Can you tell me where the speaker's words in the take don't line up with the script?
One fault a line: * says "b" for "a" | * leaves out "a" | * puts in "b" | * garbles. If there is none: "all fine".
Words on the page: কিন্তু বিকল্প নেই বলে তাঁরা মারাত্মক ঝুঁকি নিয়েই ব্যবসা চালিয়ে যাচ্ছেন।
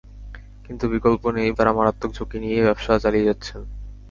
* leaves out "বলে"